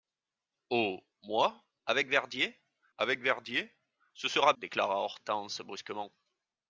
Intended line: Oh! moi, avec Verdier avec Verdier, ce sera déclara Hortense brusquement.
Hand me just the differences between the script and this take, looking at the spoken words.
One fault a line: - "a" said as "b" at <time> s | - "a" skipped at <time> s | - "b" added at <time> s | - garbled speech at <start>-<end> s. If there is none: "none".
none